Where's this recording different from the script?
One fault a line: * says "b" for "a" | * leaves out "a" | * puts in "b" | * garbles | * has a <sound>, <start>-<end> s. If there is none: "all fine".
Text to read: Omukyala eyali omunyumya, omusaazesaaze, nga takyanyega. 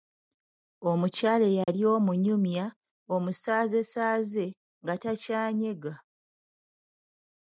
* has a dropout, 1.6-1.7 s